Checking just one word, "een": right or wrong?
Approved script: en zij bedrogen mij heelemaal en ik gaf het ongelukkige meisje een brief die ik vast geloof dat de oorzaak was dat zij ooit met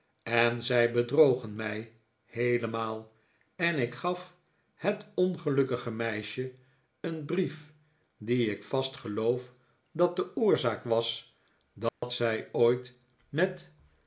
right